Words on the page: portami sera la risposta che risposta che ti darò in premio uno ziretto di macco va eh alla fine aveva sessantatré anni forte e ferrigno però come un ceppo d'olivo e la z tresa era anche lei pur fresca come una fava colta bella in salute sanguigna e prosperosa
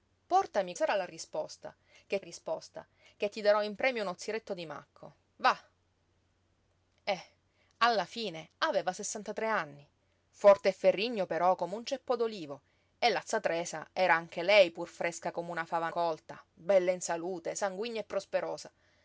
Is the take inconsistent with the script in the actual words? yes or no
no